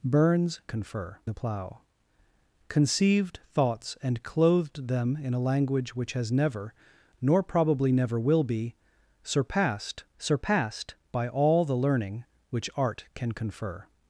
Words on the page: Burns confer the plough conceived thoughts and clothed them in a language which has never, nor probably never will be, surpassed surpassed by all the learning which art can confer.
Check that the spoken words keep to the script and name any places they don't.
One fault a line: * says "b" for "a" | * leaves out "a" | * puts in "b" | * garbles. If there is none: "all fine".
all fine